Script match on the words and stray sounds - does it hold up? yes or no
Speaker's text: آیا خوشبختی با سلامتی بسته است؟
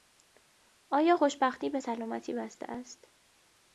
no